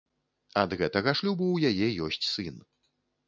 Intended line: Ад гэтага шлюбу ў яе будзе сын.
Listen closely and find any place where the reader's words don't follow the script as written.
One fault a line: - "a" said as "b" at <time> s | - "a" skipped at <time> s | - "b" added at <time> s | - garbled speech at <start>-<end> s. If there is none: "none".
- "будзе" said as "ёсць" at 2.1 s